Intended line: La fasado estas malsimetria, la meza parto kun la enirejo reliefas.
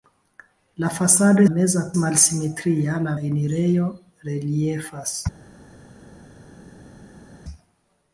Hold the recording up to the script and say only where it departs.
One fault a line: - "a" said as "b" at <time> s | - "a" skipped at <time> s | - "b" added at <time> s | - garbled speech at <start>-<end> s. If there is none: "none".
- "estas" said as "meza" at 1.5 s
- "meza parto kun" skipped at 3.2 s